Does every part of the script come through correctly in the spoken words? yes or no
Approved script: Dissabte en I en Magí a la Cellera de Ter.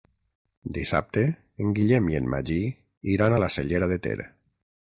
no